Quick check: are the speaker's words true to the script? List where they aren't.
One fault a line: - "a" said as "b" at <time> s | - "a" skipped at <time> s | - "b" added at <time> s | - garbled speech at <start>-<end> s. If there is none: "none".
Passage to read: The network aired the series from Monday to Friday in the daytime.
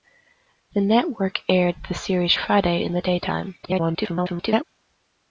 - "from Monday to" skipped at 2.3 s
- garbled speech at 3.6-4.6 s